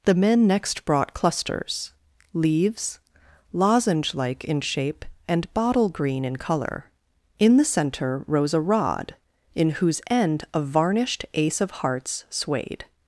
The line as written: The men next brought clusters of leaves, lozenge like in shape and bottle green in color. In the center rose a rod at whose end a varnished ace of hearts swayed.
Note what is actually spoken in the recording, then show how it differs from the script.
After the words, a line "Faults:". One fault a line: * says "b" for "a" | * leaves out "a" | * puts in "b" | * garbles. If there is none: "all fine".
The men next brought clusters leaves, lozenge like in shape and bottle green in color. In the center rose a rod in whose end a varnished ace of hearts swayed.
Faults:
* leaves out "of"
* says "in" for "at"